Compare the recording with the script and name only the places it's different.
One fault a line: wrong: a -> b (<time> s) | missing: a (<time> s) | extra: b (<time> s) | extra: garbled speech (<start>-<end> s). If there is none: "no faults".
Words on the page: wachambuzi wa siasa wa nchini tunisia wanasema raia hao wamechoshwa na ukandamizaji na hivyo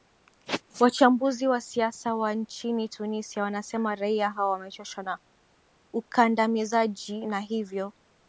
no faults